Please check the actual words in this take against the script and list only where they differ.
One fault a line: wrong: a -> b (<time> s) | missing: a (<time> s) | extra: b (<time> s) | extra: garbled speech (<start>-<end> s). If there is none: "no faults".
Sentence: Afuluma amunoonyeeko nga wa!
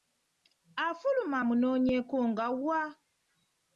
no faults